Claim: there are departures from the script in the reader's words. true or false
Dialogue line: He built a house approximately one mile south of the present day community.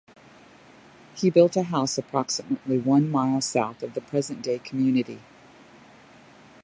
false